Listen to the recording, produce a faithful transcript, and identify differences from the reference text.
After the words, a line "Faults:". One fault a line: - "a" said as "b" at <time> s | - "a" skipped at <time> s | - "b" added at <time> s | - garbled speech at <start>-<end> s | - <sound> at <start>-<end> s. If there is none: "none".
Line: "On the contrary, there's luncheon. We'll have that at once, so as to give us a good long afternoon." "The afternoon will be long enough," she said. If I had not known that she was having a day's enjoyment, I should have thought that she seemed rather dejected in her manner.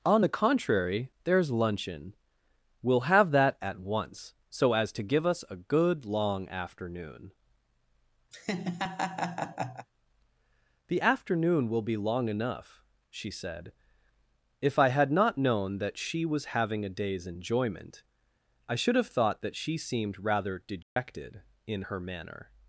"On the contrary, there's luncheon. We'll have that at once, so as to give us a good long afternoon." "The afternoon will be long enough," she said. If I had not known that she was having a day's enjoyment, I should have thought that she seemed rather dejected in her manner.
Faults:
- laugh at 8.3-9.9 s
- dropout at 20.8-21.0 s